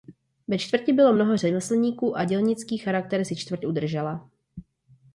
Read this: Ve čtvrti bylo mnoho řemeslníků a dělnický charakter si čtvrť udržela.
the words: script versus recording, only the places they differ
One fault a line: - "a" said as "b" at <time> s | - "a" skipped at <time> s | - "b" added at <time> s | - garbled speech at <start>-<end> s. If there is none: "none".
none